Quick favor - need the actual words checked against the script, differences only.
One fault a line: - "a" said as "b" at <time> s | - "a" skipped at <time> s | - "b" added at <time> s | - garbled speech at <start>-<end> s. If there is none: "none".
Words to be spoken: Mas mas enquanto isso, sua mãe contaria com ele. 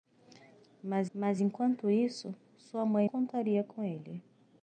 none